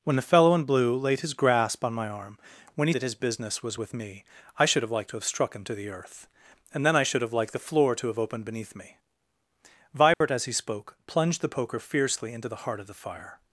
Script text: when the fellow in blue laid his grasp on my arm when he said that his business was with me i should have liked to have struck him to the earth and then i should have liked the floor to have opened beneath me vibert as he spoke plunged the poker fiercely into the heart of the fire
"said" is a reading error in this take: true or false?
true